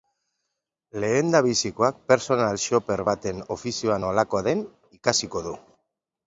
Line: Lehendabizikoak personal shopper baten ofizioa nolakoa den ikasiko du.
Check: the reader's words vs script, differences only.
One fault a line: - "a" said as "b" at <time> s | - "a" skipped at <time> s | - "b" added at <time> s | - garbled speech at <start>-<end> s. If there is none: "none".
none